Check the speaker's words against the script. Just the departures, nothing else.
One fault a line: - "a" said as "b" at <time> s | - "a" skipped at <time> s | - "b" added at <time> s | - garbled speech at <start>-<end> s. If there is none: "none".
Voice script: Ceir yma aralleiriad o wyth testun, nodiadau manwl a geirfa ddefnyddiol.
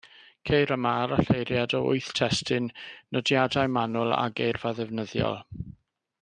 none